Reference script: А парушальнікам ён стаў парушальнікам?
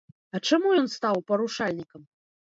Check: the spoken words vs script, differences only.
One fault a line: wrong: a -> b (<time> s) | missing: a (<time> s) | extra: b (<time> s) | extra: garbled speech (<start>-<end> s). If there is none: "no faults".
wrong: парушальнікам -> чаму (0.5 s)